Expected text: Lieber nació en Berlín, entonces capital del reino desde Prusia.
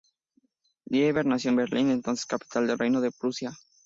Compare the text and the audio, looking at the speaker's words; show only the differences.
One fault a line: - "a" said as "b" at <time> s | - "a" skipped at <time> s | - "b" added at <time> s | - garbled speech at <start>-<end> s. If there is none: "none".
- "desde" said as "de" at 3.0 s